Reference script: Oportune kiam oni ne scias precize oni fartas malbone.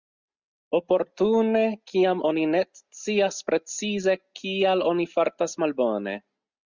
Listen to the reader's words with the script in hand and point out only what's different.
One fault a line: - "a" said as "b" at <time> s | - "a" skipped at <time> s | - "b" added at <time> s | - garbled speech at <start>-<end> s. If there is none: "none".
- "kial" added at 4.4 s